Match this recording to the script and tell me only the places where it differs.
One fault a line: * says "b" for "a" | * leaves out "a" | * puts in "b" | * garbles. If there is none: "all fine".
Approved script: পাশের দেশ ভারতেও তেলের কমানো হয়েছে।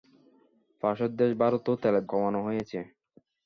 all fine